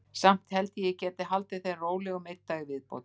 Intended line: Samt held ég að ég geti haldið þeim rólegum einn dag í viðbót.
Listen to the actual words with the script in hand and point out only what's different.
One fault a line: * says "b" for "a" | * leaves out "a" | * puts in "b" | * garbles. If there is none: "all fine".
all fine